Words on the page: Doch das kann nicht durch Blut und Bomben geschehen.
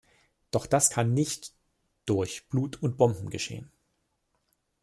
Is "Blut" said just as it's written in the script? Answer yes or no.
yes